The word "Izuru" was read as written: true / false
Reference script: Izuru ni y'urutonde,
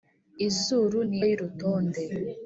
true